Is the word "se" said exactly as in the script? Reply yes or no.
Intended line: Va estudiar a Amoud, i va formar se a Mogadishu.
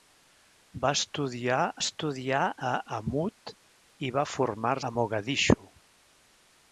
no